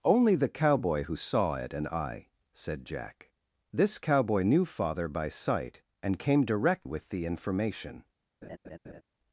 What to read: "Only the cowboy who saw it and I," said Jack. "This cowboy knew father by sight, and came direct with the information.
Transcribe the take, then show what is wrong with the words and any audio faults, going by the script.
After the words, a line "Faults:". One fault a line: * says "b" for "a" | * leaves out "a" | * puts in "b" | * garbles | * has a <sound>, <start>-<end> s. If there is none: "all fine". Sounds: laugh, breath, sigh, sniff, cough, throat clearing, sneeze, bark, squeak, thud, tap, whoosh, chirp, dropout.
"Only the cowboy who saw it and I," said Jack. "This cowboy knew father by sight, and came direct with the information.
Faults:
* has a laugh, 8.4-9.0 s